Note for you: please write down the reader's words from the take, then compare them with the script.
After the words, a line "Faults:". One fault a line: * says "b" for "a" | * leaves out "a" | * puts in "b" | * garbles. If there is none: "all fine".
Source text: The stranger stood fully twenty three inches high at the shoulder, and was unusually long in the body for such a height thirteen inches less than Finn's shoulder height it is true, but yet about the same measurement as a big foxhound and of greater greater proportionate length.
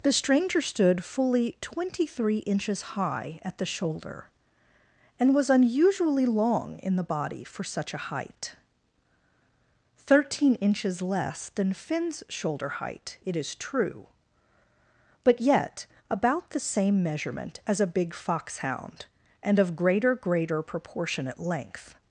The stranger stood fully twenty three inches high at the shoulder, and was unusually long in the body for such a height thirteen inches less than Finn's shoulder height it is true, but yet about the same measurement as a big foxhound and of greater greater proportionate length.
Faults:
all fine